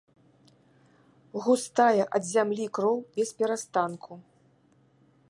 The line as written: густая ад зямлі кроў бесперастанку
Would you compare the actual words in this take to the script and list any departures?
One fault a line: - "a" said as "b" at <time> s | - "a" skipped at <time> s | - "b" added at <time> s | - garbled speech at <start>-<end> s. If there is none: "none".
none